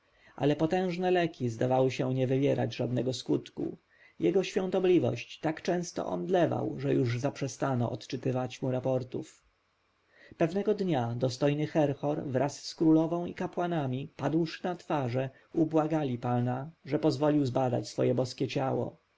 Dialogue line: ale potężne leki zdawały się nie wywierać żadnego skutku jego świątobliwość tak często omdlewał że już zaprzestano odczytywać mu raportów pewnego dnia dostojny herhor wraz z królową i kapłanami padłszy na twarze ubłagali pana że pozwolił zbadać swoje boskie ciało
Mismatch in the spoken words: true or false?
false